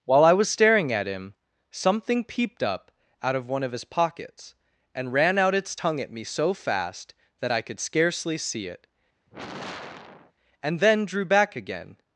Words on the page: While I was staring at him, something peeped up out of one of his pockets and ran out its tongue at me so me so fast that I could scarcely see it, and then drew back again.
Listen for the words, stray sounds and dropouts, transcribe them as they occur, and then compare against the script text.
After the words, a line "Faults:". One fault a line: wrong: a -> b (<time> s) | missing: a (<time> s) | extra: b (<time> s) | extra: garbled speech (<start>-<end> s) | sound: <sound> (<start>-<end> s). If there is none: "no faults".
While I was staring at him, something peeped up out of one of his pockets and ran out its tongue at me so fast that I could scarcely see it, and then drew back again.
Faults:
missing: me so (6.5 s)
sound: sigh (9.3-10.3 s)